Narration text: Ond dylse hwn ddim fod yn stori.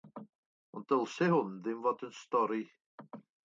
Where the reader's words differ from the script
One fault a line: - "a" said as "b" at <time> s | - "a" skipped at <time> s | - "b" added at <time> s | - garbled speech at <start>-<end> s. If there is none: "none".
none